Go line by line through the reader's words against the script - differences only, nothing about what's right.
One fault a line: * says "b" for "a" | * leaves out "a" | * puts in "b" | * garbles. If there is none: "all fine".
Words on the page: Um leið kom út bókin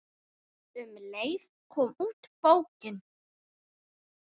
all fine